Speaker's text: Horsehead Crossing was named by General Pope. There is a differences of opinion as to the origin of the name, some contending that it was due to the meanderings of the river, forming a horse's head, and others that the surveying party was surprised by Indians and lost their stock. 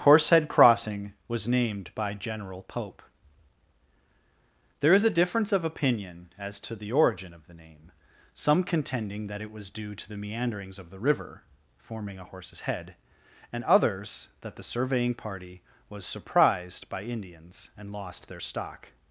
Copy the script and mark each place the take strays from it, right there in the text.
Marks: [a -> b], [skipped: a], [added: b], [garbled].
Horsehead Crossing was named by General Pope. There is a [differences -> difference] of opinion as to the origin of the name, some contending that it was due to the meanderings of the river, forming a horse's head, and others that the surveying party was surprised by Indians and lost their stock.